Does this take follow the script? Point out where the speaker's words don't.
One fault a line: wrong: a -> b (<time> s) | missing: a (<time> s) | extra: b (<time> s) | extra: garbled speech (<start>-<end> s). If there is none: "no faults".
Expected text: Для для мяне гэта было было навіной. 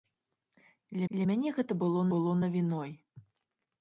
no faults